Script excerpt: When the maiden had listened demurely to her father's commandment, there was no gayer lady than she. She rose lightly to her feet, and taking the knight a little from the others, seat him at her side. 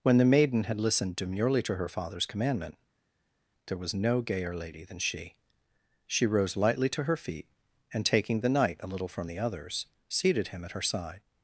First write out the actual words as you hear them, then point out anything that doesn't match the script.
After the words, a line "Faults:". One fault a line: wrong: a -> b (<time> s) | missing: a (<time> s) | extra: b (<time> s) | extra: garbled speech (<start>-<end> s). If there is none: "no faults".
When the maiden had listened demurely to her father's commandment, there was no gayer lady than she. She rose lightly to her feet, and taking the knight a little from the others, seated him at her side.
Faults:
wrong: seat -> seated (10.1 s)